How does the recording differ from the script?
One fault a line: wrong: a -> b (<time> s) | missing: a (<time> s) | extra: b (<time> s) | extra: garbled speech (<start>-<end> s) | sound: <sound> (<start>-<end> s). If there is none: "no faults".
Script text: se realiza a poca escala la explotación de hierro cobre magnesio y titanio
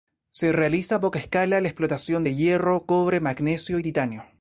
no faults